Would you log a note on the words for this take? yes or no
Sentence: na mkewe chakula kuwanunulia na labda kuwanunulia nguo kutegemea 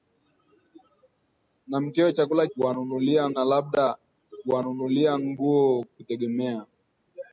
no